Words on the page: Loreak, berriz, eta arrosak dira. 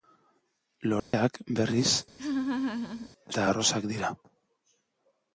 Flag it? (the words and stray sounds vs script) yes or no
yes